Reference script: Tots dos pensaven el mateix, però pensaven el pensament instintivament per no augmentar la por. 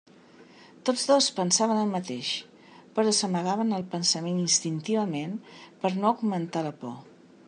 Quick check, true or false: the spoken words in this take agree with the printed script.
false